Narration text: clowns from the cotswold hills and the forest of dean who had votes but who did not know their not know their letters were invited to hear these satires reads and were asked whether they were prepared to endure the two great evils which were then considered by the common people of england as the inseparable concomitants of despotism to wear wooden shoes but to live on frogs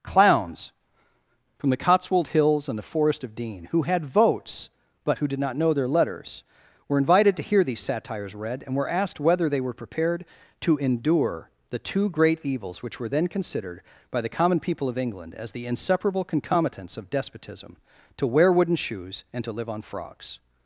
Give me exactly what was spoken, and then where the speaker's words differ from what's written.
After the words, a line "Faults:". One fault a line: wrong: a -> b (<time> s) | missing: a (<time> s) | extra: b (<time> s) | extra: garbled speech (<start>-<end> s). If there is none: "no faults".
clowns from the cotswold hills and the forest of dean who had votes but who did not know their letters were invited to hear these satires read and were asked whether they were prepared to endure the two great evils which were then considered by the common people of england as the inseparable concomitants of despotism to wear wooden shoes and to live on frogs
Faults:
missing: not know their (5.9 s)
wrong: reads -> read (8.3 s)
wrong: but -> and (19.3 s)